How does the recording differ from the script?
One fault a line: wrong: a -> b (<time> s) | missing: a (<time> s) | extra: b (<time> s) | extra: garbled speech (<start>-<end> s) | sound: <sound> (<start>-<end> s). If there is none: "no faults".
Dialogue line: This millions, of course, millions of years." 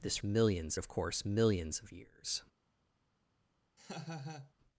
sound: laugh (3.8-4.5 s)